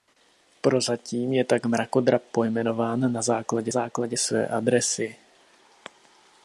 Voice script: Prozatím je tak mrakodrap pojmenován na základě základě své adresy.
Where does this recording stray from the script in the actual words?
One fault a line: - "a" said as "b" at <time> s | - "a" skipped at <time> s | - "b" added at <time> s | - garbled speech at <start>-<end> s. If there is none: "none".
none